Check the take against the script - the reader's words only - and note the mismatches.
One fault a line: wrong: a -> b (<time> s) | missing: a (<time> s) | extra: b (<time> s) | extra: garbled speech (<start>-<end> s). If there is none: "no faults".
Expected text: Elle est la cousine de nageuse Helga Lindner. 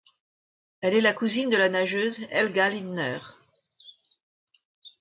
extra: la (1.6 s)